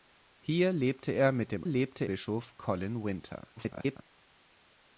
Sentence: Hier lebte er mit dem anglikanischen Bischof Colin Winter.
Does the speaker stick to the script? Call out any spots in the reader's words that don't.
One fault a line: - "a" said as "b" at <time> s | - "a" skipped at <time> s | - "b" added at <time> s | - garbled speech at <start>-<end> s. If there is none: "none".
- "anglikanischen" said as "lebte" at 1.7 s
- garbled speech at 3.6-4.0 s